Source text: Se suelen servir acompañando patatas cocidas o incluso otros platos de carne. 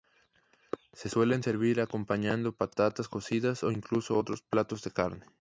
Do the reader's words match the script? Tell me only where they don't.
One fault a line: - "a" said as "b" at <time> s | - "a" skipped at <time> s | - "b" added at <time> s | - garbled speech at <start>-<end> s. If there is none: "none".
none